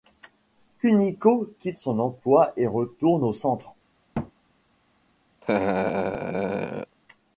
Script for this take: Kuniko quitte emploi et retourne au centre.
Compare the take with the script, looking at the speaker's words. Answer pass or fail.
fail